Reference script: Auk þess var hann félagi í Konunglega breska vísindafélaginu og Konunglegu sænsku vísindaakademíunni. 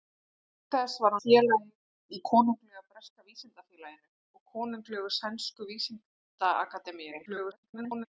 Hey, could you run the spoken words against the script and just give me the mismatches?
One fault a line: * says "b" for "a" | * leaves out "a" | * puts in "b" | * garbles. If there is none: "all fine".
* leaves out "hann"
* garbles